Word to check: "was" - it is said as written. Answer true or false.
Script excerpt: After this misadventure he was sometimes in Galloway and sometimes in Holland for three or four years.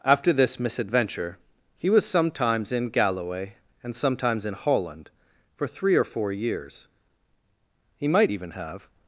true